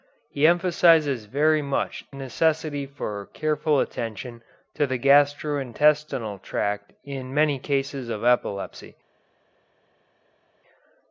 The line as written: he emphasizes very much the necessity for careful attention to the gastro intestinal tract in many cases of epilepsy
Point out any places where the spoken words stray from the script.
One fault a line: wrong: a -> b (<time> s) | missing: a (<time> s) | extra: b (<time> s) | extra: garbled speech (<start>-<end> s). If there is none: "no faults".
missing: the (2.0 s)